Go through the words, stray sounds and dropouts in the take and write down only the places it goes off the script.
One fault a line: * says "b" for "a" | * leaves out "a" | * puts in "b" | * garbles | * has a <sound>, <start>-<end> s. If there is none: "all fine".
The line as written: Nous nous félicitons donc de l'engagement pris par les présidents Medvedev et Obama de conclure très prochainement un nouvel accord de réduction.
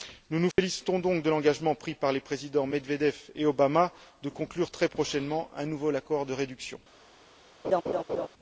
* has a dropout, 0.5-0.6 s
* has a laugh, 7.6-8.3 s